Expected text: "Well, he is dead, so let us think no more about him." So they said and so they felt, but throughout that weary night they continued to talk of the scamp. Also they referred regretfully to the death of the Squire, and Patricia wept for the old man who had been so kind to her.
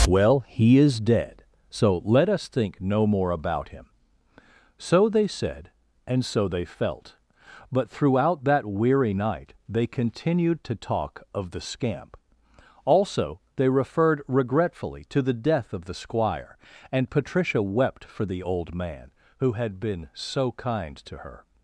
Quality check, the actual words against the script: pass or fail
pass